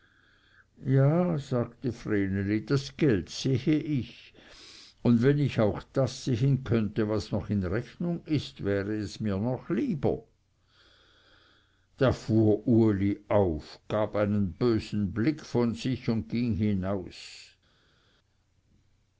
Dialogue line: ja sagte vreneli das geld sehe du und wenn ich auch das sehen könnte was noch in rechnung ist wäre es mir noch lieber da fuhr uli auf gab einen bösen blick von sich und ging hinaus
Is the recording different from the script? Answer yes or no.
yes